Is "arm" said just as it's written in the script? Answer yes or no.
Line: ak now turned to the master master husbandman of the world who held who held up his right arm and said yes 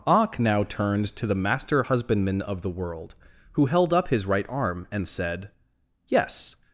yes